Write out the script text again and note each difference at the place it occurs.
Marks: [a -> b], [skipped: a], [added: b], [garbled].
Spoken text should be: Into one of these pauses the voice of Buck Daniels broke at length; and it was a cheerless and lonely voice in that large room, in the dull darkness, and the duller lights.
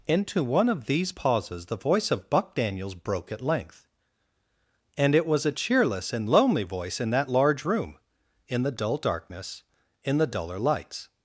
Into one of these pauses the voice of Buck Daniels broke at length; and it was a cheerless and lonely voice in that large room, in the dull darkness, [and -> in] the duller lights.